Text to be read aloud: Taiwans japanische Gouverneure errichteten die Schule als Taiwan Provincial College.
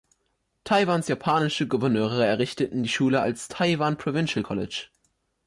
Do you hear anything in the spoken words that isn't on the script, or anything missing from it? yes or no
no